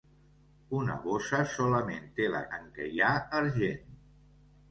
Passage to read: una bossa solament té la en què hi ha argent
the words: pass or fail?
pass